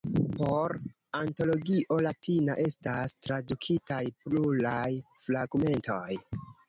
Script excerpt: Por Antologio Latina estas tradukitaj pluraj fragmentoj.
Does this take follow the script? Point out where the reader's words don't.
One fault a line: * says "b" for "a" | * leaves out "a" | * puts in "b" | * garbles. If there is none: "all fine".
all fine